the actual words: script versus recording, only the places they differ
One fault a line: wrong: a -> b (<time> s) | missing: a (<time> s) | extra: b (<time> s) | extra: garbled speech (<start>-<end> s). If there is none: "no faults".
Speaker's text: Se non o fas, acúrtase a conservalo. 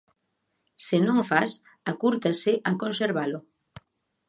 no faults